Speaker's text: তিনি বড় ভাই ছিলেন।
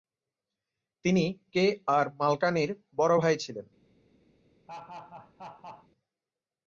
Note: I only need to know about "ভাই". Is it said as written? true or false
true